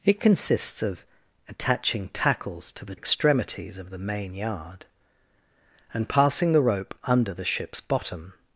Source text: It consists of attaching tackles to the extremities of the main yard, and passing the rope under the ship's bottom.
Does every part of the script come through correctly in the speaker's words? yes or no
yes